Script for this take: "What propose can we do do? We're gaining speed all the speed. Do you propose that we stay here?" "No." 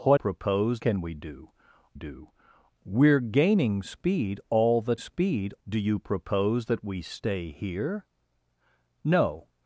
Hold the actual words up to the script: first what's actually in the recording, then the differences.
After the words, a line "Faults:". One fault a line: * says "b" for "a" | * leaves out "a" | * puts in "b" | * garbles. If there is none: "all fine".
"What propose can we do do? We're gaining speed all the speed. Do you propose that we stay here?" "No."
Faults:
all fine